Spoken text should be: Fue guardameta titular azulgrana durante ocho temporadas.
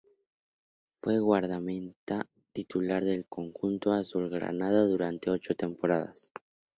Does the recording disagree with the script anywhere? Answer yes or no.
yes